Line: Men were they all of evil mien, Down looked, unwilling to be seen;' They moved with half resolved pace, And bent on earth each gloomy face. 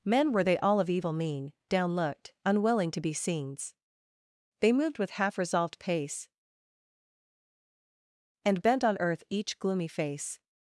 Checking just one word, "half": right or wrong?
right